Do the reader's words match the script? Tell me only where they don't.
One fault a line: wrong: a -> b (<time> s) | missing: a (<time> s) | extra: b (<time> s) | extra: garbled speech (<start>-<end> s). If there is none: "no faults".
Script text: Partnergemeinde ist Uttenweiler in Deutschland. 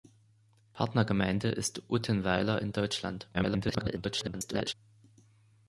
extra: garbled speech (3.3-4.7 s)